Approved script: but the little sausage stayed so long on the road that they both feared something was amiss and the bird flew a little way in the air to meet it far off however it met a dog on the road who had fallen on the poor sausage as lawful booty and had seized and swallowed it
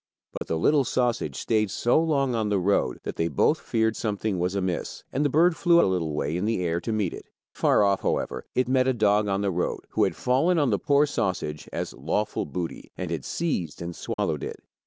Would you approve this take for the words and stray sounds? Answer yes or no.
no